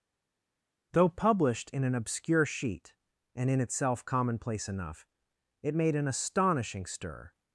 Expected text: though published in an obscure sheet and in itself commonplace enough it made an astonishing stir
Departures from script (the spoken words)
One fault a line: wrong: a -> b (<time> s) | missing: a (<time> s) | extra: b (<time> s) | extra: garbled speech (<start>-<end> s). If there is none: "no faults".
no faults